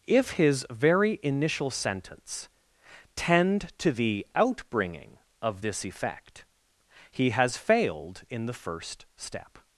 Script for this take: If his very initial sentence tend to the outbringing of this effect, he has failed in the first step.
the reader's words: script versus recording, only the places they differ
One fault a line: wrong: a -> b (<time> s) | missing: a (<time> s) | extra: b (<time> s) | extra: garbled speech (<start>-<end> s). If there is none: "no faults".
no faults